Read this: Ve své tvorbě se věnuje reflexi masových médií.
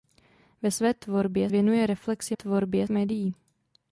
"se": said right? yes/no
no